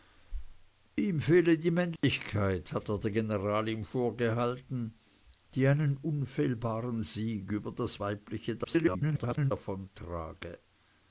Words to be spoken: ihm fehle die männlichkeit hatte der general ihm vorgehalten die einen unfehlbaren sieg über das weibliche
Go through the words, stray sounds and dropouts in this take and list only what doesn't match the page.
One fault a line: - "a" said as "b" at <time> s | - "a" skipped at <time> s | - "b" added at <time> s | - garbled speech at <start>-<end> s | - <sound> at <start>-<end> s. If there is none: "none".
- dropout at 2.0-2.0 s
- garbled speech at 8.6-9.5 s